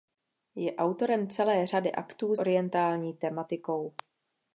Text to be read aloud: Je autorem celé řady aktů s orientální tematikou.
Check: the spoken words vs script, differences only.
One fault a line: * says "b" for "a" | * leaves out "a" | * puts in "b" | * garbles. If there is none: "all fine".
* leaves out "s"